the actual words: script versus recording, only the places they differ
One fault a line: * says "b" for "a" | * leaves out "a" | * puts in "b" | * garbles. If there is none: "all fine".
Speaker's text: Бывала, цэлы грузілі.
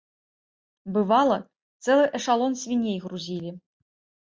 * puts in "эшалон свіней"